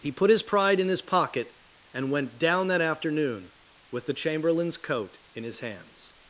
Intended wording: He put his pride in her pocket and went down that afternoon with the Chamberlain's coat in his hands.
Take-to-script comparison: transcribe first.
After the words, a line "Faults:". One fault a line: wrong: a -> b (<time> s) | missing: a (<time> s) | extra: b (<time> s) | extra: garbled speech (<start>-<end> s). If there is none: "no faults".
He put his pride in his pocket and went down that afternoon with the Chamberlain's coat in his hands.
Faults:
wrong: her -> his (0.9 s)